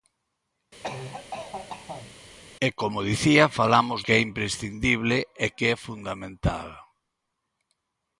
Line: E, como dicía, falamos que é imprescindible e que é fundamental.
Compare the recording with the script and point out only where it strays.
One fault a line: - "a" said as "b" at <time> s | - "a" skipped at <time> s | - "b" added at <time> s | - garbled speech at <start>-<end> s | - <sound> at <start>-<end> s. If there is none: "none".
- cough at 0.8-2.2 s